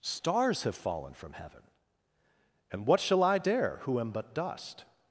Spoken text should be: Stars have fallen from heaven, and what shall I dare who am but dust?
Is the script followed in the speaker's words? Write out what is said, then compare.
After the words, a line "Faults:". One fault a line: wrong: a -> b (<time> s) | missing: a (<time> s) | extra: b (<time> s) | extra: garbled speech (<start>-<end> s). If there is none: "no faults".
Stars have fallen from heaven, and what shall I dare who am but dust?
Faults:
no faults